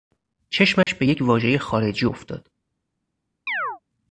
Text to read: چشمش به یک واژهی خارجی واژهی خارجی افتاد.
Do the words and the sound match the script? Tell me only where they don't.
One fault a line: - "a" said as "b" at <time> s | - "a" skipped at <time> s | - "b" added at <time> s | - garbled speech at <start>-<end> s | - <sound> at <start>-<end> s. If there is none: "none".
- dropout at 0.8-0.9 s
- "واژهی خارجی" skipped at 2.1 s
- chirp at 3.5-3.8 s